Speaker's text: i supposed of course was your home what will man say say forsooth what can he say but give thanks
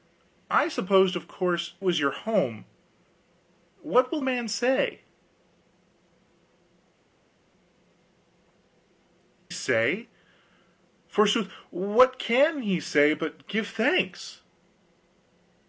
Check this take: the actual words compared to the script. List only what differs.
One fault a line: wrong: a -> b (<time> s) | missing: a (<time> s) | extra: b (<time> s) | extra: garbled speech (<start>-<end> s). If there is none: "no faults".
no faults